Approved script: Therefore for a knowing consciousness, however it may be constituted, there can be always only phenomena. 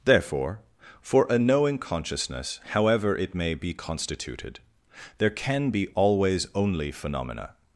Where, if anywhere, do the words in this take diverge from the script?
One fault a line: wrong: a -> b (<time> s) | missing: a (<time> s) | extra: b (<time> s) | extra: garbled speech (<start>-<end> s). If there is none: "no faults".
no faults